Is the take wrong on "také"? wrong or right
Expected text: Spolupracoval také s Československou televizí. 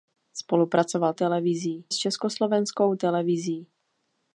wrong